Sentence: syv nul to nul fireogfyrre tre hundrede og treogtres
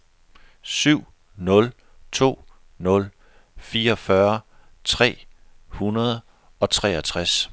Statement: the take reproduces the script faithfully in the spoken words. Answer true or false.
true